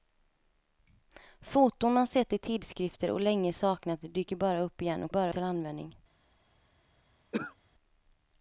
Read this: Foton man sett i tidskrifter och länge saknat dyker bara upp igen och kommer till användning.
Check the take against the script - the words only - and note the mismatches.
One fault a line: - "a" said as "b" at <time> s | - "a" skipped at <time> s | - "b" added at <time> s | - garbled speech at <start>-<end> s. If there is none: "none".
- "kommer" said as "bara" at 5.1 s